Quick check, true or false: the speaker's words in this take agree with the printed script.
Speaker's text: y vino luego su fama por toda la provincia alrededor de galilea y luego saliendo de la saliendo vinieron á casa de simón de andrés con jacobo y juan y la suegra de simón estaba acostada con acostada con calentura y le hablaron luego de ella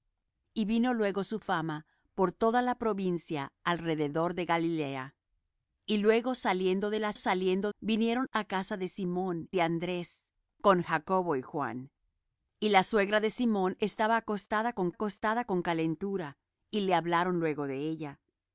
true